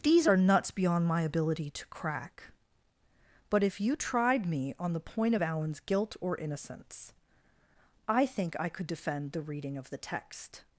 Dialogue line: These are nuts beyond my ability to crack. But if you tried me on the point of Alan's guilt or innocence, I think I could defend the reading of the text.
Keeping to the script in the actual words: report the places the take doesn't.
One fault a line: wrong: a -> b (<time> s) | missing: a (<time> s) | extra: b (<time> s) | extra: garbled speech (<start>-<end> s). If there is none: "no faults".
no faults